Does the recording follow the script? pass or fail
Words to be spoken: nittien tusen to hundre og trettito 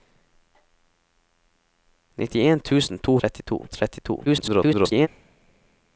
fail